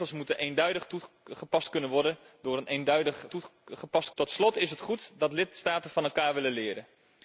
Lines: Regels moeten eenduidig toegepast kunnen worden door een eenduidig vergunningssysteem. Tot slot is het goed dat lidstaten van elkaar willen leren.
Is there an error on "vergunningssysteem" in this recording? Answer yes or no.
yes